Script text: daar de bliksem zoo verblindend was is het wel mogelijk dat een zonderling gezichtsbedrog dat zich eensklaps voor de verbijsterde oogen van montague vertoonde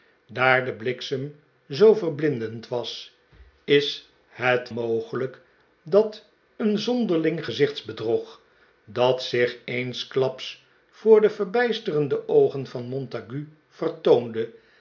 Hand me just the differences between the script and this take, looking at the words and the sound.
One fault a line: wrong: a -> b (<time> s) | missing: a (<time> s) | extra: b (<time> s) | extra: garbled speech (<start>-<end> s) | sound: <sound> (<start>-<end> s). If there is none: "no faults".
missing: wel (4.7 s)